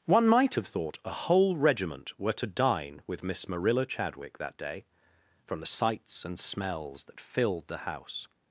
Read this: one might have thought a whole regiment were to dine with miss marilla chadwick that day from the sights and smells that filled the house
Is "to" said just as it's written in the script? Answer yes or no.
yes